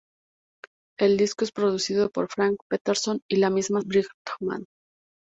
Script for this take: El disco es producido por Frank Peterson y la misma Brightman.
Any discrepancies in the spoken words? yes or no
no